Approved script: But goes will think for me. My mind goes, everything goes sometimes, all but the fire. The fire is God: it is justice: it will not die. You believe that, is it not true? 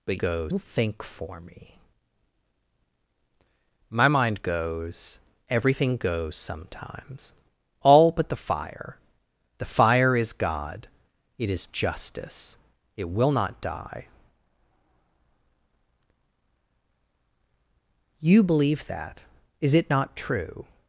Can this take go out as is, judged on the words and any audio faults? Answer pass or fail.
pass